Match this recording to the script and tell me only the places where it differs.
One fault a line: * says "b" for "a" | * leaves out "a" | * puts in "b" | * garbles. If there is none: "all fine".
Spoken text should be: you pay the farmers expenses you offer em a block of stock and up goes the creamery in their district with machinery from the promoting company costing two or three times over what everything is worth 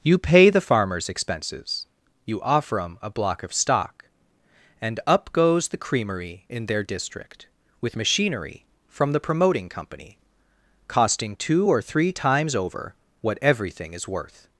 all fine